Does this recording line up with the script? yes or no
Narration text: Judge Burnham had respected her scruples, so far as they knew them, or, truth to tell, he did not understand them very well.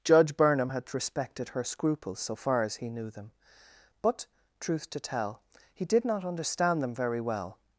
no